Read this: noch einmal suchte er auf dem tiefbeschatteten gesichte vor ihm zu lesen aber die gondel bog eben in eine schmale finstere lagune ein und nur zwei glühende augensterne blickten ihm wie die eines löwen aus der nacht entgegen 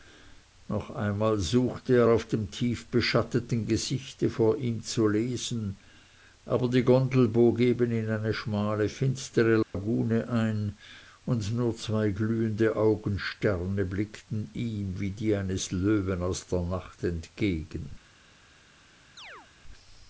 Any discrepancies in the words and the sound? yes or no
yes